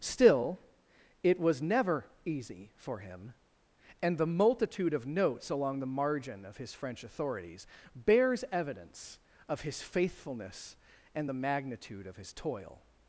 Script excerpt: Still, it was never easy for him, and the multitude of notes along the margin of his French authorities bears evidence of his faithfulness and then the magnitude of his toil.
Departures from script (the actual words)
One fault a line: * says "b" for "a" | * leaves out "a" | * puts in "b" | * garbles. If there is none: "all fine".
* leaves out "then"